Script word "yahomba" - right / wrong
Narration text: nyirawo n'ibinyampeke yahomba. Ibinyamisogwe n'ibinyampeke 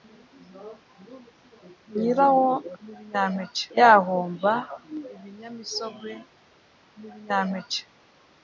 right